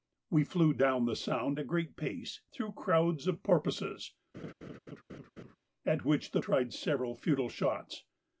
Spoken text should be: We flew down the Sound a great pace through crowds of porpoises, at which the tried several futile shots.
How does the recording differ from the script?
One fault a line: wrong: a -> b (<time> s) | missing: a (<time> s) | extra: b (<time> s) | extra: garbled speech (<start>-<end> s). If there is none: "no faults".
no faults